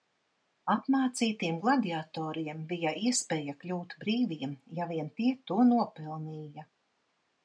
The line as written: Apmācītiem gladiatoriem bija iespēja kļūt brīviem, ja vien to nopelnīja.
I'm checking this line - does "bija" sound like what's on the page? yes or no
yes